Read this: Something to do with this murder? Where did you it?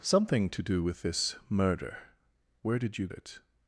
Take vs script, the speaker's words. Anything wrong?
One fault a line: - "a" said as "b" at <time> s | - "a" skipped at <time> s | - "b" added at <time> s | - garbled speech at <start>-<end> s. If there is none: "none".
none